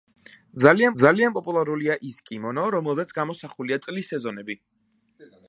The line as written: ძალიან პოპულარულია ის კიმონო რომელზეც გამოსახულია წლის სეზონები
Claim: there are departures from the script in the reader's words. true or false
true